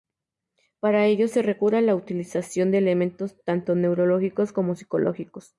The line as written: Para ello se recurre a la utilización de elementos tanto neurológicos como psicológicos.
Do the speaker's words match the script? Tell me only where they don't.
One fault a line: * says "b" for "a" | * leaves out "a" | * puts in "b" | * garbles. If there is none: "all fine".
all fine